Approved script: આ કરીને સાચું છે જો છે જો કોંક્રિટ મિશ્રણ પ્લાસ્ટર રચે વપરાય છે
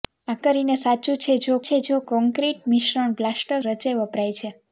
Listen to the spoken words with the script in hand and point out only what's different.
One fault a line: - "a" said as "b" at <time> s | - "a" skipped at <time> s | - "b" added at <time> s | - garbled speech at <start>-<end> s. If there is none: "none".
none